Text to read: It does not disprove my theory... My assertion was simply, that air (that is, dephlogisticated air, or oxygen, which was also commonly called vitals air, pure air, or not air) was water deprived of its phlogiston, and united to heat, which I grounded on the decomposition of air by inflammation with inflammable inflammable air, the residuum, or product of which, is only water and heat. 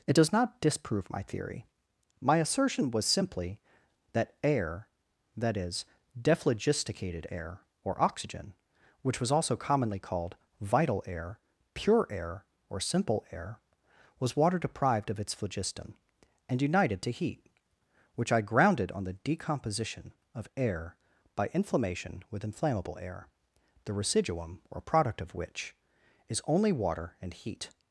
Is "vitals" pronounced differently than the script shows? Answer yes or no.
yes